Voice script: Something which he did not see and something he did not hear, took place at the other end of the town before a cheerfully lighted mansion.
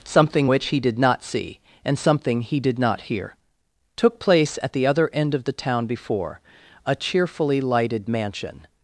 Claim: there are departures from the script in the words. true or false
false